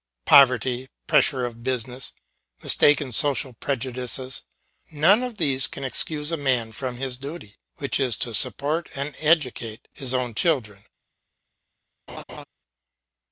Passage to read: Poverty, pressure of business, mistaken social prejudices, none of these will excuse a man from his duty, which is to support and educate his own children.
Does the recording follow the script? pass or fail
fail